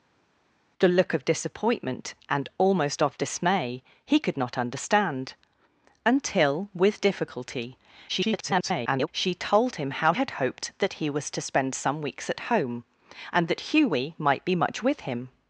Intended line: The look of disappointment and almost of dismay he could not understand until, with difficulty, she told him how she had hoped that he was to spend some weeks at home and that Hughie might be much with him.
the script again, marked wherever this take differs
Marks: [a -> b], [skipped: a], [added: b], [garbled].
The look of disappointment and almost of dismay he could not understand until, with difficulty, [garbled] she told him how [skipped: she] had hoped that he was to spend some weeks at home and that Hughie might be much with him.